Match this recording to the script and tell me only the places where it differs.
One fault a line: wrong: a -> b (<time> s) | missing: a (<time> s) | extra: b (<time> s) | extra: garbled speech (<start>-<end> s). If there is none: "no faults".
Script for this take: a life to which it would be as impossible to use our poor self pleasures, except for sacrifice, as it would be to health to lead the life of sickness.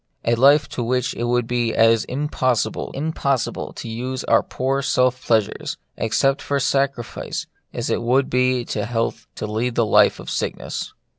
extra: impossible (2.9 s)